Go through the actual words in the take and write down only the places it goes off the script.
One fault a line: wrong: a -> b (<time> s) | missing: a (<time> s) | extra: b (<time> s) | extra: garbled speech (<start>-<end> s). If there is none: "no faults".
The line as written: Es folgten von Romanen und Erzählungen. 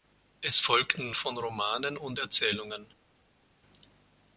no faults